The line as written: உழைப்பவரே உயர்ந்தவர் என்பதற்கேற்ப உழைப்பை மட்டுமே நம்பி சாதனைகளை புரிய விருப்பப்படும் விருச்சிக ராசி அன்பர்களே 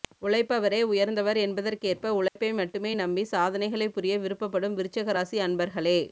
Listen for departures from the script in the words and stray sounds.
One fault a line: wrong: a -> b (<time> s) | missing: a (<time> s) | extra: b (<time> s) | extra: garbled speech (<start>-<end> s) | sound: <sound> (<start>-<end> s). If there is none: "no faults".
sound: dropout (2.3-2.4 s)